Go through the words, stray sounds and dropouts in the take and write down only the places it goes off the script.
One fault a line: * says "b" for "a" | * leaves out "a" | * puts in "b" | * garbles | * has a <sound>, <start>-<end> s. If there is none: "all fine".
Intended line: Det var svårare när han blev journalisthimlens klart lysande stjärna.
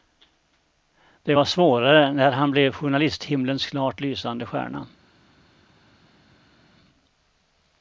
all fine